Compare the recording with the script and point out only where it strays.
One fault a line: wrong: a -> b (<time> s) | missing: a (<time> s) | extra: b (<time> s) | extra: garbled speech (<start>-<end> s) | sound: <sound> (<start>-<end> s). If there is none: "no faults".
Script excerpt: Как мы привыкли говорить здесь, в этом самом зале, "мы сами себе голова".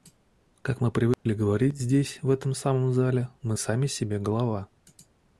sound: dropout (1.1-1.3 s)